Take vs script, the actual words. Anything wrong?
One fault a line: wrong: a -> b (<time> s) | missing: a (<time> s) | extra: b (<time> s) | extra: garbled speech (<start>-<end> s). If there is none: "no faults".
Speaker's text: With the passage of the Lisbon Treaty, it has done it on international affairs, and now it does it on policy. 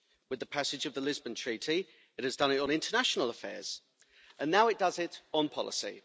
no faults